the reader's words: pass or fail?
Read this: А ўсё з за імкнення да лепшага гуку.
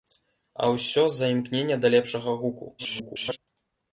fail